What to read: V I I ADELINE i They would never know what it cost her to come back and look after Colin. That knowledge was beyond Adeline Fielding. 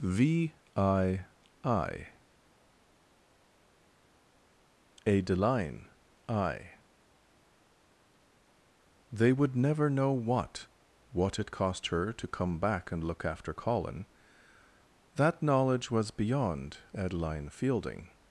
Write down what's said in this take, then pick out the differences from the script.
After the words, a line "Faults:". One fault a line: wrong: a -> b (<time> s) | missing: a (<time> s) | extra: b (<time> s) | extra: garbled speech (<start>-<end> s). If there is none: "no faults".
V I I ADELINE i They would never know what what it cost her to come back and look after Colin. That knowledge was beyond Adeline Fielding.
Faults:
extra: what (11.1 s)